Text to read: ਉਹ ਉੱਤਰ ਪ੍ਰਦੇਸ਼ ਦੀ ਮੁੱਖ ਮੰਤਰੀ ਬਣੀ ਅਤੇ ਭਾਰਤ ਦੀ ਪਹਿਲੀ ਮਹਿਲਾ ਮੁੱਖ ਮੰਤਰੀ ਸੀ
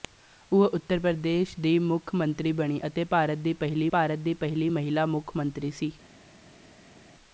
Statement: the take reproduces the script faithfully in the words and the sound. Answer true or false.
false